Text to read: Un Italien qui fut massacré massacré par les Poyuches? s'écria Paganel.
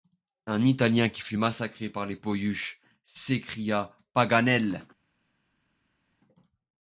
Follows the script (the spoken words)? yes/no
no